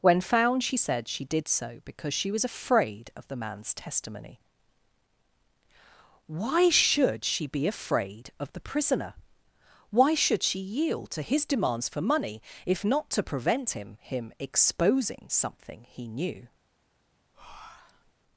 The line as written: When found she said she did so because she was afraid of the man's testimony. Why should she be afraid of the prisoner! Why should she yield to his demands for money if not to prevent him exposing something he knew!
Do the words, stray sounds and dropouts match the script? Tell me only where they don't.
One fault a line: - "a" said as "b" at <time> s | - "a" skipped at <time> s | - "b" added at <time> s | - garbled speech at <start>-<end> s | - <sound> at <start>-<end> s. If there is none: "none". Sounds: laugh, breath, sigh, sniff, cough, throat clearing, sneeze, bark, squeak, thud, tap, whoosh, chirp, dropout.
- "him" added at 14.0 s
- breath at 17.3-18.1 s